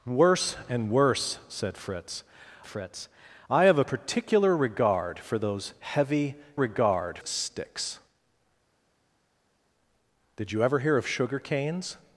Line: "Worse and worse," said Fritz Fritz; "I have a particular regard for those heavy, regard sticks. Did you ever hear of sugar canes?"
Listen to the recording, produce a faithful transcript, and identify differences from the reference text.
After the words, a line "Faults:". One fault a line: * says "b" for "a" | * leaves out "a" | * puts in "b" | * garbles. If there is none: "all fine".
"Worse and worse," said Fritz Fritz; "I have a particular regard for those heavy, regard sticks. Did you ever hear of sugar canes?"
Faults:
all fine